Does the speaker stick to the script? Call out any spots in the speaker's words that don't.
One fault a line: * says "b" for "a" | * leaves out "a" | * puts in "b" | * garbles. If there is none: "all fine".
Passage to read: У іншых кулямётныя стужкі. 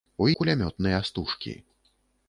* leaves out "іншых"